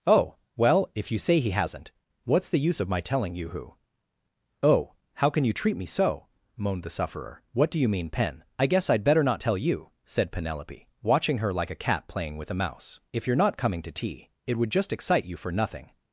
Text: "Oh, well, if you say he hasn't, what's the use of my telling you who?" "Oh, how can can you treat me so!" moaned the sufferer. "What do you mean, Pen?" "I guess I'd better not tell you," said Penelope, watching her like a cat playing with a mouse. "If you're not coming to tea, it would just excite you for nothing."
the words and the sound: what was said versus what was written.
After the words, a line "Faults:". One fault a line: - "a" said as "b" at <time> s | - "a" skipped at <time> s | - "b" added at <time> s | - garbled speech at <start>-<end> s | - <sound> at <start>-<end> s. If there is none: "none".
"Oh, well, if you say he hasn't, what's the use of my telling you who?" "Oh, how can you treat me so!" moaned the sufferer. "What do you mean, Pen?" "I guess I'd better not tell you," said Penelope, watching her like a cat playing with a mouse. "If you're not coming to tea, it would just excite you for nothing."
Faults:
- "can" skipped at 5.4 s